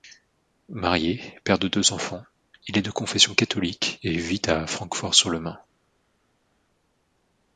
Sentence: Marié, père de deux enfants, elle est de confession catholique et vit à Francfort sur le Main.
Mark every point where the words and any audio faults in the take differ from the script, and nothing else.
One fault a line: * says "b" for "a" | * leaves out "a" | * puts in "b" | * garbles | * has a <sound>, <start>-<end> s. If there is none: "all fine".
* says "il" for "elle"